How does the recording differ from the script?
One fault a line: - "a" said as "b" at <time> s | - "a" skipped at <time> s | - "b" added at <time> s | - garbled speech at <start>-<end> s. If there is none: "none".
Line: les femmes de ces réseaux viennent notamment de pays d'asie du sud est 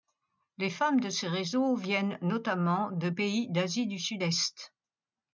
none